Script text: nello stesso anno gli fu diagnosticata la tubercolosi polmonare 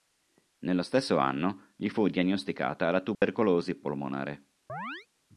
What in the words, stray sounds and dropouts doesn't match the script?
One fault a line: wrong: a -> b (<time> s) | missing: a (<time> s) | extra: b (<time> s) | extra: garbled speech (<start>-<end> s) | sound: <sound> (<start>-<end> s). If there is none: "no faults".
sound: dropout (3.1-3.2 s)
sound: chirp (4.7-5.1 s)